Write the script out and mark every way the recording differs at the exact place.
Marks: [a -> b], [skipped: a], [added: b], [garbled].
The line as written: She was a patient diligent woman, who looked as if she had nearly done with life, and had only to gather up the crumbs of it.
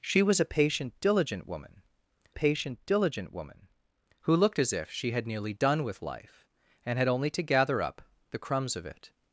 She was a patient diligent woman, [added: patient diligent woman] who looked as if she had nearly done with life, and had only to gather up the crumbs of it.